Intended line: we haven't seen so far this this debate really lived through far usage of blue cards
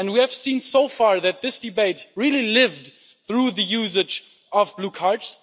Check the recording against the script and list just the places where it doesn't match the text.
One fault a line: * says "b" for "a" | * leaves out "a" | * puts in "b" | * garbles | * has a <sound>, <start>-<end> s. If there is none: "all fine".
* says "have" for "haven't"
* says "that" for "this"
* says "the" for "far"